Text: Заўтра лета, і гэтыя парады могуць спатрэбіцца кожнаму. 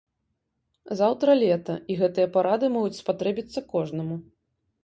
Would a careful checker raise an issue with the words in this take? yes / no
no